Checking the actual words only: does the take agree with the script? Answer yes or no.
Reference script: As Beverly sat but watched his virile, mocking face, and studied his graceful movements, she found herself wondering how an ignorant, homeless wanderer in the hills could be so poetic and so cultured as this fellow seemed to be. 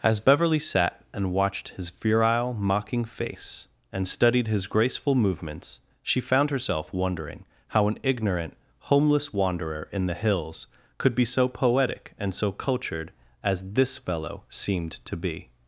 no